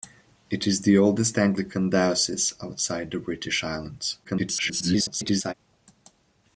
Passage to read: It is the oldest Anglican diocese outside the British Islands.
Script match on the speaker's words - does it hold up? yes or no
no